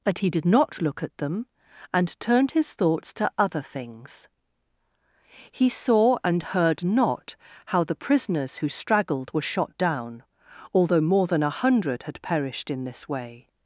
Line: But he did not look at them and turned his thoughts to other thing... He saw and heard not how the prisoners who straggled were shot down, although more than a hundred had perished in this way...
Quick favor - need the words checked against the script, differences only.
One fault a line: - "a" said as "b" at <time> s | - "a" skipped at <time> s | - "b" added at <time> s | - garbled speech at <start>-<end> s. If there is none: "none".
- "thing" said as "things" at 3.6 s